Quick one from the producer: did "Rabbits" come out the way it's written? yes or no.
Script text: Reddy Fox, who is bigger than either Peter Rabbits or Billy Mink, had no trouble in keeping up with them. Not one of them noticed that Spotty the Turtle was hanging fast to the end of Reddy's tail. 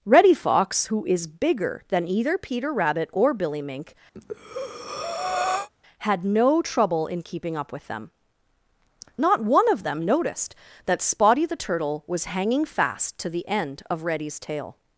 no